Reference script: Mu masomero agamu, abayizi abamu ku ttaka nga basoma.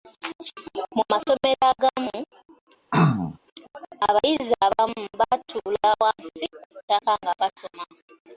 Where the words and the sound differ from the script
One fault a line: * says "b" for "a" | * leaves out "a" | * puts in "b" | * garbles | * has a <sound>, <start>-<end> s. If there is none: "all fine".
* has a throat clearing, 2.9-3.4 s
* puts in "batuula wansi"